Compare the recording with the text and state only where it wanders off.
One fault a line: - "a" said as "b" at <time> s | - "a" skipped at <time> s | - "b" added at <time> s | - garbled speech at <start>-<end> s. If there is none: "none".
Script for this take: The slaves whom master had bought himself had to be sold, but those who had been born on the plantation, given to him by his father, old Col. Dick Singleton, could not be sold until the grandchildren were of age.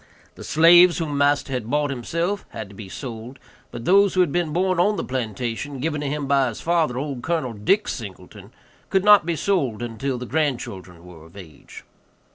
none